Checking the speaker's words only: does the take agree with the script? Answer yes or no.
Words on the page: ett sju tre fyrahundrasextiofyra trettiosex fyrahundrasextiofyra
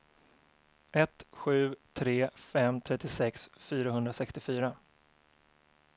no